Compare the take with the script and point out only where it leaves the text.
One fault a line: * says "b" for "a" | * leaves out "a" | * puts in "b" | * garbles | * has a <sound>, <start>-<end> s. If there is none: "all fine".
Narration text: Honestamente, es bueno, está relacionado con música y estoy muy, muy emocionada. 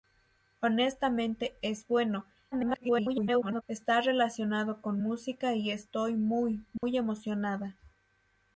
* garbles
* has a dropout, 6.8-6.8 s